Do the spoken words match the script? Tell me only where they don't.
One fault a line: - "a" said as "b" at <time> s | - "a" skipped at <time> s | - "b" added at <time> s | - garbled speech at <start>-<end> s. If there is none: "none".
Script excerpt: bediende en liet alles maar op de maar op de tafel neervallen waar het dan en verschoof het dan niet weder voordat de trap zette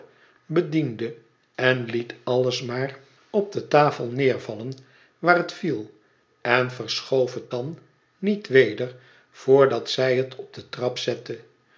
- "maar op de" skipped at 3.7 s
- "dan" said as "viel" at 5.5 s
- "zij het op" added at 9.9 s